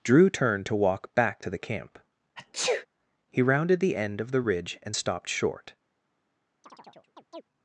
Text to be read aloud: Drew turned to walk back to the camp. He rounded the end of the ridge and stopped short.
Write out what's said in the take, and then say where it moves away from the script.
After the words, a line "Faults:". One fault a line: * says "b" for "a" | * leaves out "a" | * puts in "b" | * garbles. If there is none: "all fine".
Drew turned to walk back to the camp. He rounded the end of the ridge and stopped short.
Faults:
all fine